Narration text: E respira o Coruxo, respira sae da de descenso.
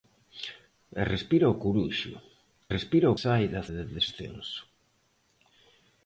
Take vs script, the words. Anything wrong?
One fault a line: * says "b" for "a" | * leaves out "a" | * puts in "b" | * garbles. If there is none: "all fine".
all fine